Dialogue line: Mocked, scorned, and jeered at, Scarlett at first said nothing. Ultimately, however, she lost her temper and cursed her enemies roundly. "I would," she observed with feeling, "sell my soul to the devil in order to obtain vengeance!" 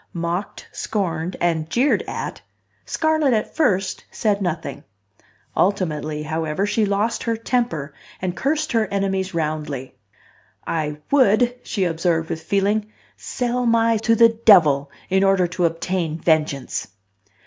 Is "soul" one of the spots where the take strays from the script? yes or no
yes